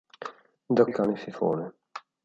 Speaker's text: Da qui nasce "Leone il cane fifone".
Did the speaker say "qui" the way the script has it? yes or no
no